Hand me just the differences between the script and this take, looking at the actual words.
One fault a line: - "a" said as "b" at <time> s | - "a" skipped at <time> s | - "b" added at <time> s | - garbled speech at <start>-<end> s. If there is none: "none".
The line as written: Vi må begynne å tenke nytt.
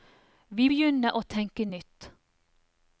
- "må" skipped at 0.7 s